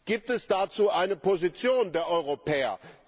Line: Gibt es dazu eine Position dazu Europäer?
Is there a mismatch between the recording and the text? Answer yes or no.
yes